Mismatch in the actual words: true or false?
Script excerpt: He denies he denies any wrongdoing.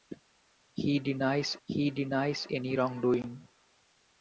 false